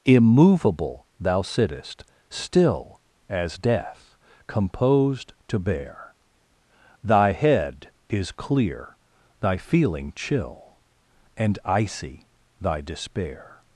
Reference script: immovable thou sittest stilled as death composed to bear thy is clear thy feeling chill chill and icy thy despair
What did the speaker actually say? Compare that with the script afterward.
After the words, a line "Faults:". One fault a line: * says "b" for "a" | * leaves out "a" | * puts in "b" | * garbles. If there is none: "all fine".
immovable thou sittest still as death composed to bear thy head is clear thy feeling chill and icy thy despair
Faults:
* says "still" for "stilled"
* puts in "head"
* leaves out "chill"